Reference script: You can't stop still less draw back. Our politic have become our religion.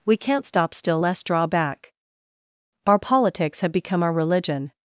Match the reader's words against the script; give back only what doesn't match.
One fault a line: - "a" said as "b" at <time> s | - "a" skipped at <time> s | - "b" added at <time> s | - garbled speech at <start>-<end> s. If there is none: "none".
- "You" said as "We" at 0.0 s
- "politic" said as "politics" at 3.0 s